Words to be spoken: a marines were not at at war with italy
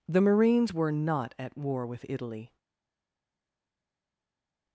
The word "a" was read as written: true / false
false